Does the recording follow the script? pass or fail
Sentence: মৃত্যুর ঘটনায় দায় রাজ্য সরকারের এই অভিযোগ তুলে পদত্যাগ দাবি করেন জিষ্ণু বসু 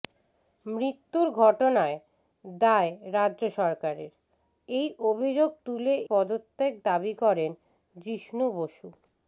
pass